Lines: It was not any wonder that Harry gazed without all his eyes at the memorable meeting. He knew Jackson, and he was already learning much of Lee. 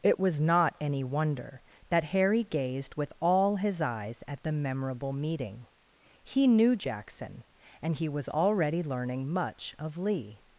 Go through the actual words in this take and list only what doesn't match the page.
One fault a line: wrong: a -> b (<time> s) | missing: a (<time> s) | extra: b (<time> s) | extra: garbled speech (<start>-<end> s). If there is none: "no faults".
wrong: without -> with (3.0 s)